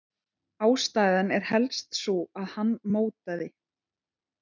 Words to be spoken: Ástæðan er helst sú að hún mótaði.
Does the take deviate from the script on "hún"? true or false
true